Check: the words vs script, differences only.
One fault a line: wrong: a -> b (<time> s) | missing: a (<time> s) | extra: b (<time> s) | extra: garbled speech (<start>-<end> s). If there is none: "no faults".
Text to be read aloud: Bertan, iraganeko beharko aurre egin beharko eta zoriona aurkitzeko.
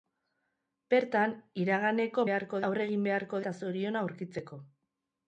no faults